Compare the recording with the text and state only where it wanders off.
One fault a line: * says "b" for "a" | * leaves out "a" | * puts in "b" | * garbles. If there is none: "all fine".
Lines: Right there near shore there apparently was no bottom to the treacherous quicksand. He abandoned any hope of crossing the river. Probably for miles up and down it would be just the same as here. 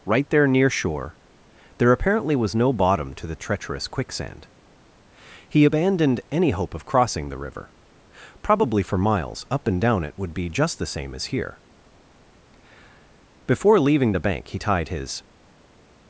* puts in "Before leaving the bank he tied his"